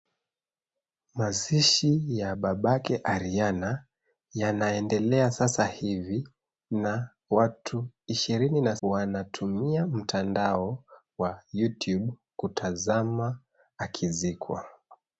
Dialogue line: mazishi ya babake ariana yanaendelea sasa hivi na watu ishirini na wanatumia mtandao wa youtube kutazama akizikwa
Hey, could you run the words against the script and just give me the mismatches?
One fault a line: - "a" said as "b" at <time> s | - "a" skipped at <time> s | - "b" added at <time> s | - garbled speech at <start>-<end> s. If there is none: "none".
none